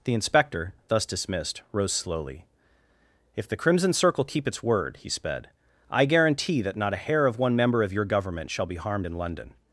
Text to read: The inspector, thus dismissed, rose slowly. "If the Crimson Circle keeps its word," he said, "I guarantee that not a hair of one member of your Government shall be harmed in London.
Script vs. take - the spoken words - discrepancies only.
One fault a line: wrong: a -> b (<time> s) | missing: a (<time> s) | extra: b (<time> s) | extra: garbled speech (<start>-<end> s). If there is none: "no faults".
wrong: keeps -> keep (4.2 s)
wrong: said -> sped (5.1 s)